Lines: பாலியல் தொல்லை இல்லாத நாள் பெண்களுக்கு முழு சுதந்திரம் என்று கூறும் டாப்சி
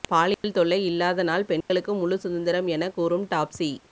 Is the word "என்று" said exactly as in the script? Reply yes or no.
no